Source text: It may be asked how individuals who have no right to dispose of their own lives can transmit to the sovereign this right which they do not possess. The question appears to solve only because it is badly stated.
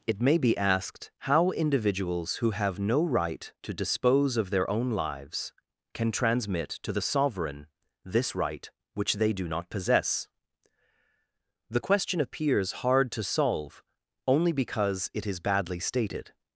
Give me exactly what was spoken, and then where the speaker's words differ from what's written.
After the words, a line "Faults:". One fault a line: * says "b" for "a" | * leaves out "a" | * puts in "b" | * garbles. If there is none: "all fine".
It may be asked how individuals who have no right to dispose of their own lives can transmit to the sovereign this right which they do not possess. The question appears hard to solve only because it is badly stated.
Faults:
* puts in "hard"